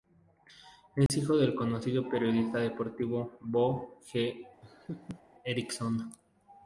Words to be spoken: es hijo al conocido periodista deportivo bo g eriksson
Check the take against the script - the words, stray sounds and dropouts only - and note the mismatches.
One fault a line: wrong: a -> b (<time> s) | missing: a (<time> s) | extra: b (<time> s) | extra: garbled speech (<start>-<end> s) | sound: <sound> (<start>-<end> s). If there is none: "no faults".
sound: dropout (1.1-1.1 s)
wrong: al -> del (1.4 s)
sound: laugh (4.6-5.2 s)